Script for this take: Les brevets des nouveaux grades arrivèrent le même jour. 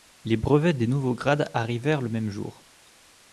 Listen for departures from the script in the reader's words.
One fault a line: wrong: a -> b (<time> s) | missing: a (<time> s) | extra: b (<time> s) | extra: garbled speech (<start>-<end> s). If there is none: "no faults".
no faults